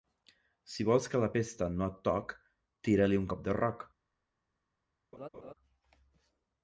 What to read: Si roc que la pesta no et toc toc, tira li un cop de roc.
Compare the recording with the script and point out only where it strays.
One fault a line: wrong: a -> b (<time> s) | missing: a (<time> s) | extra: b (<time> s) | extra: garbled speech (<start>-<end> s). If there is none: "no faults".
wrong: roc -> vols (0.9 s)
missing: toc (2.3 s)